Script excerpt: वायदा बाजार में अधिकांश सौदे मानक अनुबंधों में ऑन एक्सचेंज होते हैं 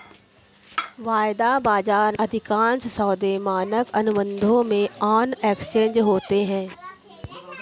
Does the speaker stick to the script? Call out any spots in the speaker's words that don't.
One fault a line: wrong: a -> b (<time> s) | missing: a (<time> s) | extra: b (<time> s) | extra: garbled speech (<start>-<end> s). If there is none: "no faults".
missing: में (2.2 s)